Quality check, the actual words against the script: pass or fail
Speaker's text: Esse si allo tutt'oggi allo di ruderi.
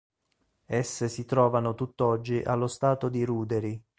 fail